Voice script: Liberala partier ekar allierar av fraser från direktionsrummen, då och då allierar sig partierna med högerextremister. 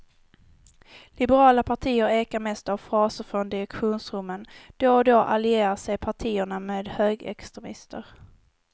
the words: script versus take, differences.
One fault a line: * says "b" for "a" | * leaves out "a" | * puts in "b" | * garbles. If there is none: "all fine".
* says "mest" for "allierar"